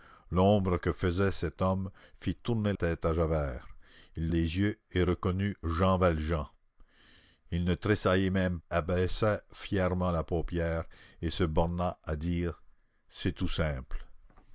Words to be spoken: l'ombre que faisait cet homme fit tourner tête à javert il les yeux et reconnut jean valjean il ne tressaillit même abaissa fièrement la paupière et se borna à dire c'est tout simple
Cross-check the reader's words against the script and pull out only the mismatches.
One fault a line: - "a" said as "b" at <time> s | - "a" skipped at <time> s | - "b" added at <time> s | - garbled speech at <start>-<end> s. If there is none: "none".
none